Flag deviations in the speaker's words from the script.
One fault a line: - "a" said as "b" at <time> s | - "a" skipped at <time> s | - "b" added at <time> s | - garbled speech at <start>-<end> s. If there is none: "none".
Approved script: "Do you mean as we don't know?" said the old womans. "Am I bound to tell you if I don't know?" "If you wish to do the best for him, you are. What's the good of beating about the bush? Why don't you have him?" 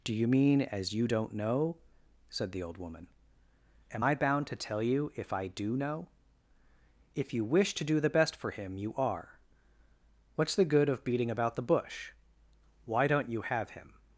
- "we" said as "you" at 0.9 s
- "womans" said as "woman" at 2.8 s
- "don't" said as "do" at 5.5 s